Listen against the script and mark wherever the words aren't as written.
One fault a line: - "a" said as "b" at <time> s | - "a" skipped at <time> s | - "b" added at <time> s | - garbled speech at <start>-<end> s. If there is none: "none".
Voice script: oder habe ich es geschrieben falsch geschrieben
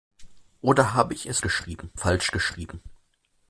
none